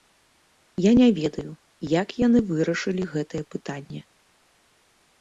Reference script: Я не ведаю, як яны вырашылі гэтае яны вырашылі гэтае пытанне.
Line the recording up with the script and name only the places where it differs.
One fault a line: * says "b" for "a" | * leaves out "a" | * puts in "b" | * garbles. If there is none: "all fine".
* leaves out "яны вырашылі гэтае"